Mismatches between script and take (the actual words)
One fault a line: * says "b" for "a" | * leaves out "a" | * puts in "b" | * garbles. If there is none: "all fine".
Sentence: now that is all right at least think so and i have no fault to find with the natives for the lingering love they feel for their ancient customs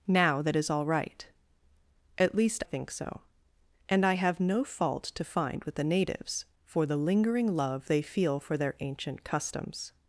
all fine